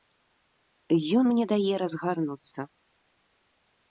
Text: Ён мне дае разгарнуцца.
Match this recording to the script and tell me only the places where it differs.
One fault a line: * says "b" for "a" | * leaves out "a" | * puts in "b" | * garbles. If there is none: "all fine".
all fine